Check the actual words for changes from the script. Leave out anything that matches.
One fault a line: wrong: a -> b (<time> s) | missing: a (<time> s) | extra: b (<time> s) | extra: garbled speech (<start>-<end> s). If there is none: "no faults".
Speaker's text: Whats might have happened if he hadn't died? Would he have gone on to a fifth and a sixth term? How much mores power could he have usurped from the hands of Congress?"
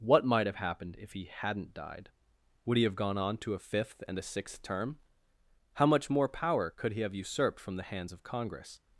wrong: Whats -> What (0.0 s)
wrong: mores -> more (6.1 s)